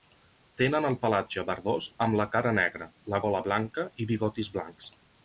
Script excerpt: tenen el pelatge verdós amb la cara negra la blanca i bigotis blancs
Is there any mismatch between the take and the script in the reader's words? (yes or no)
yes